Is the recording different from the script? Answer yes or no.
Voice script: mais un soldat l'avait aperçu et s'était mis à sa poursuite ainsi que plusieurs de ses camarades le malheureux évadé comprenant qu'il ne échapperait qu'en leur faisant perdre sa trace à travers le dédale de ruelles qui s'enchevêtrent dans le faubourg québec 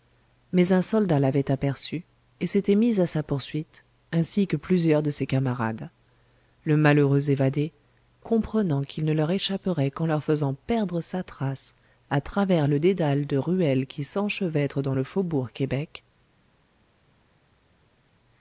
yes